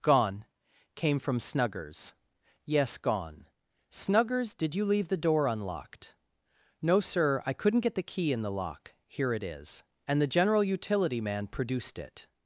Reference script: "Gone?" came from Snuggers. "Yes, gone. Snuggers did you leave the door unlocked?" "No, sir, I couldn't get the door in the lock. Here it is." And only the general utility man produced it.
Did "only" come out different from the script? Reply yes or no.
yes